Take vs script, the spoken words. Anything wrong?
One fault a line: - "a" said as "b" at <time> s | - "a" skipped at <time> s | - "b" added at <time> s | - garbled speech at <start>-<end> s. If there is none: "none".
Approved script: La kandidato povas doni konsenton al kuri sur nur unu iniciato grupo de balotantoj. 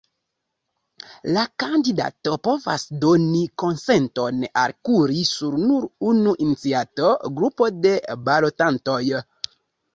none